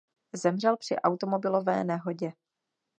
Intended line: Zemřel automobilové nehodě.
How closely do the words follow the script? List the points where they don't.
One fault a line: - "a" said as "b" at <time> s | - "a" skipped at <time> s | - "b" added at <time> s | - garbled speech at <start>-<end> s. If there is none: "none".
- "při" added at 0.8 s